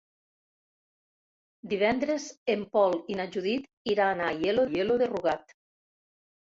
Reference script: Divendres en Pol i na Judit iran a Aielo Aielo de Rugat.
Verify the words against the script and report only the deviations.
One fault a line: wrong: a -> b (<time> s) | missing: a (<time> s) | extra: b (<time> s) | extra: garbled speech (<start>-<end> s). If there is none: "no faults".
no faults